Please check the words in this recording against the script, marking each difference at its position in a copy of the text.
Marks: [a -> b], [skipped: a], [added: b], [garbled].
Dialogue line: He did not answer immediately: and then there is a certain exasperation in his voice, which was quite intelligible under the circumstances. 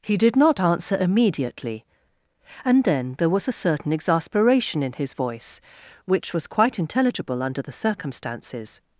He did not answer immediately: and then there [is -> was] a certain exasperation in his voice, which was quite intelligible under the circumstances.